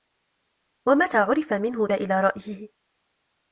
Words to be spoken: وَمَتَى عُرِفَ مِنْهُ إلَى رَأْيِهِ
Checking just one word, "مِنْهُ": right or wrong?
right